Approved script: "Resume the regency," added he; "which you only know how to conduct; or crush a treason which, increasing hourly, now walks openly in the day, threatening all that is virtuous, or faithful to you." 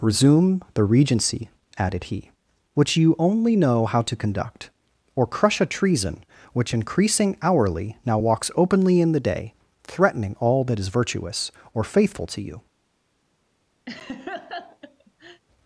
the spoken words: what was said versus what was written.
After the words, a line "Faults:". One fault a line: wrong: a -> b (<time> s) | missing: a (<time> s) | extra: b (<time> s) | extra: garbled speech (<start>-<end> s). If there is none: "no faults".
"Resume the regency," added he; "which you only know how to conduct; or crush a treason which, increasing hourly, now walks openly in the day, threatening all that is virtuous, or faithful to you."
Faults:
no faults